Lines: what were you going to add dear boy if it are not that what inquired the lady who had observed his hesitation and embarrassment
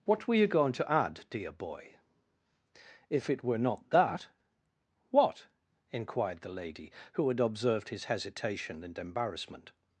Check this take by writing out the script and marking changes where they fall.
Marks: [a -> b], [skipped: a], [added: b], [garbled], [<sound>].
what were you going to add dear boy if it [are -> were] not that what inquired the lady who had observed his hesitation and embarrassment